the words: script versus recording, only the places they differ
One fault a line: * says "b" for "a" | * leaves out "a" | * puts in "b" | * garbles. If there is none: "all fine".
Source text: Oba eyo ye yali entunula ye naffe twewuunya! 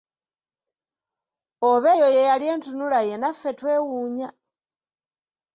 all fine